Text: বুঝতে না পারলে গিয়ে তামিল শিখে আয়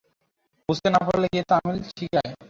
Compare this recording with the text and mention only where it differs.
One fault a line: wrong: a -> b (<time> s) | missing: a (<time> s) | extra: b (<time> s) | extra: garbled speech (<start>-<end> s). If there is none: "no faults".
no faults